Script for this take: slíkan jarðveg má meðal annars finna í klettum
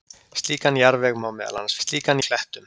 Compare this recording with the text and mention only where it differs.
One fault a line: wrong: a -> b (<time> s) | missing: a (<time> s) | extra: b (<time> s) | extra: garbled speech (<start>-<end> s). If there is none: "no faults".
wrong: finna -> slíkan (1.8 s)